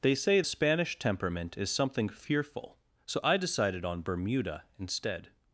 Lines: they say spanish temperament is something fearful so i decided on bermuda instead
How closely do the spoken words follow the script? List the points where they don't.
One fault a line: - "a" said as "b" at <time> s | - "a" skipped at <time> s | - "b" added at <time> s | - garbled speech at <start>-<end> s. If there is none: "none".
none